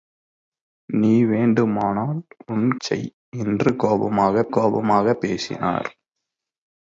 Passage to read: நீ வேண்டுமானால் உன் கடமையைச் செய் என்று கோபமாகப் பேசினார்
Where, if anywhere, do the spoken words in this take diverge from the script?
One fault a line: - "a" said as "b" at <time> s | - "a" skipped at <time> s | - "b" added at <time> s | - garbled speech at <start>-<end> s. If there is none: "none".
- "கடமையைச்" skipped at 2.8 s
- "கோபமாகப்" added at 4.5 s